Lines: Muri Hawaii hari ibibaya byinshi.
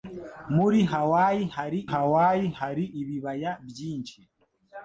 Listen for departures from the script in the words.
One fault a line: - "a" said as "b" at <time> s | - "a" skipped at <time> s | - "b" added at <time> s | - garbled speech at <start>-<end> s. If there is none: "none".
- "Hawaii hari" added at 1.9 s